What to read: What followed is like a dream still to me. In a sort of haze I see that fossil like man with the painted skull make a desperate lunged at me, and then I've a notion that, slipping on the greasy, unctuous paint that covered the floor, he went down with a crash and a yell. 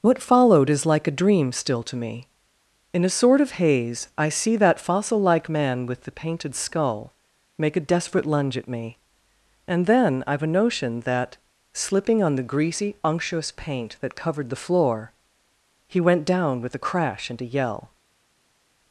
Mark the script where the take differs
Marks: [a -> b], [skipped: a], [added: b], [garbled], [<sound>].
What followed is like a dream still to me. In a sort of haze I see that fossil like man with the painted skull make a desperate [lunged -> lunge] at me, and then I've a notion that, slipping on the greasy, unctuous paint that covered the floor, he went down with a crash and a yell.